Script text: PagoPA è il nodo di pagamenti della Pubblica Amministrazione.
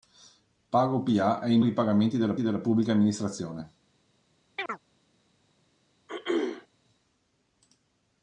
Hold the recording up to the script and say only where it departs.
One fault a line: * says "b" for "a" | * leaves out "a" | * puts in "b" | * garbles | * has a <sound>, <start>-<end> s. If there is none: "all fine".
* leaves out "nodo"
* puts in "della"
* has a chirp, 4.6-4.8 s
* has a throat clearing, 6.1-6.7 s